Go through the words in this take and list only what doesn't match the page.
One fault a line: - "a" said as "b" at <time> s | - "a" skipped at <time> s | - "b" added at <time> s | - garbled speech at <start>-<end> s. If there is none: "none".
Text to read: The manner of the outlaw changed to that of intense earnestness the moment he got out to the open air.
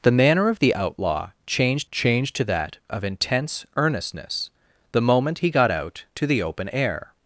- "changed" added at 1.9 s